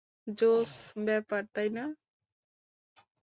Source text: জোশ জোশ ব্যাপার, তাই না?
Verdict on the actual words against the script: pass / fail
fail